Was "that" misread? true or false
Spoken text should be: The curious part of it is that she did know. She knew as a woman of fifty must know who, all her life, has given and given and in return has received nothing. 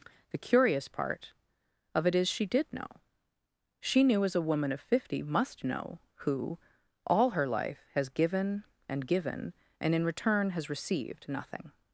true